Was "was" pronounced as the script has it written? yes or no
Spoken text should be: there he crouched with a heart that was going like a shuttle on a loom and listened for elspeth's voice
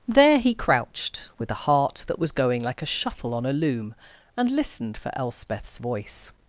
yes